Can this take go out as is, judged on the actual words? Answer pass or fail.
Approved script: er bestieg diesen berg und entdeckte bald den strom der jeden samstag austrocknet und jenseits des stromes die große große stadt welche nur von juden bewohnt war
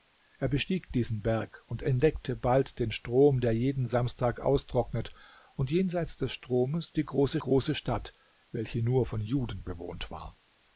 pass